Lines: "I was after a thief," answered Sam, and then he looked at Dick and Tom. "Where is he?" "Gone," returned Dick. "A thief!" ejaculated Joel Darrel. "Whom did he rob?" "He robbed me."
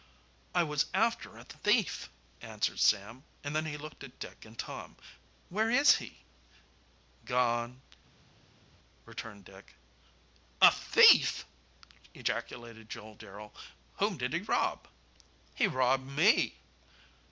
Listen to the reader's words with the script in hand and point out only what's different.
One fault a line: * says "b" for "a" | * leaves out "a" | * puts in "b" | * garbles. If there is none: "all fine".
all fine